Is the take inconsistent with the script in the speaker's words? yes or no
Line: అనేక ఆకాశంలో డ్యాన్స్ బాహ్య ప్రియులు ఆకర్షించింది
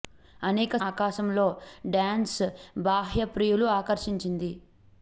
no